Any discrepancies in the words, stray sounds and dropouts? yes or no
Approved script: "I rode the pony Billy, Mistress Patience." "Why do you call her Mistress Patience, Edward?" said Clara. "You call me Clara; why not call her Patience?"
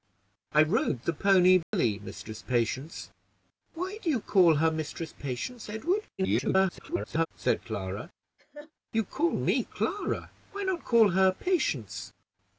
yes